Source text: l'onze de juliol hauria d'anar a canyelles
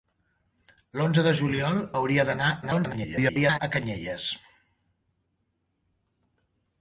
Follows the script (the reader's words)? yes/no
no